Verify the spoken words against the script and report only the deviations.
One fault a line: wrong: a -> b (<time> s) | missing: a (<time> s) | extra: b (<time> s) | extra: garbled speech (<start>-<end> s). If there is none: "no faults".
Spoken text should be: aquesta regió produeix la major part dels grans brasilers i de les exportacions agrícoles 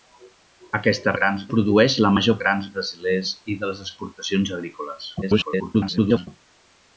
wrong: regió -> grans (1.2 s)
missing: part dels (2.4 s)
extra: garbled speech (5.2-6.3 s)